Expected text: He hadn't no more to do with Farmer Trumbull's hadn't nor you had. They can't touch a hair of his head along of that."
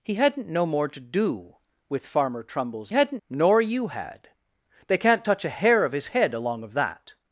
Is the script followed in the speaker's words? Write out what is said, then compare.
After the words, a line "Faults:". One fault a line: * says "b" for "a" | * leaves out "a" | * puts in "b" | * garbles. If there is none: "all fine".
He hadn't no more to do with Farmer Trumbull's hadn't nor you had. They can't touch a hair of his head along of that."
Faults:
all fine